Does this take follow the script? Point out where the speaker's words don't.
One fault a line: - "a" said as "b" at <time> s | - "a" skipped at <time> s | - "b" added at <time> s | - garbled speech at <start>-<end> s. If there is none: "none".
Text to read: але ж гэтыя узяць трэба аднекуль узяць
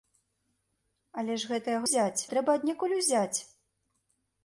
none